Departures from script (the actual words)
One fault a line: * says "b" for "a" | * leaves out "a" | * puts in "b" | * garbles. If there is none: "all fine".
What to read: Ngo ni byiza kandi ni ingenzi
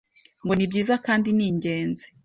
all fine